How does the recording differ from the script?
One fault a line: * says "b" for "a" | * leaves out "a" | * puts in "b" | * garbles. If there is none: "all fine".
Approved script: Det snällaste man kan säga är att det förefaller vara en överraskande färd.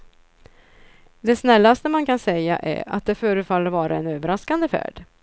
all fine